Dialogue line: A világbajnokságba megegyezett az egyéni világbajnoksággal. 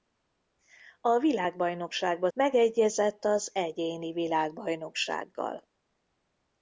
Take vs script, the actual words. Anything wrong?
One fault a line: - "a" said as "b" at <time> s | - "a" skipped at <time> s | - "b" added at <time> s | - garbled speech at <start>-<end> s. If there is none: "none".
none